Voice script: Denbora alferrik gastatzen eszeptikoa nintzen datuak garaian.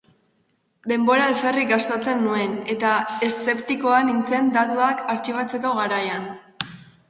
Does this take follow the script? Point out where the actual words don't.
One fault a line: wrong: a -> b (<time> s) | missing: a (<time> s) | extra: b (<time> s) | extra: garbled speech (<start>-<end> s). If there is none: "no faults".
extra: nuen eta (2.3 s)
extra: artxibatzeko (5.2 s)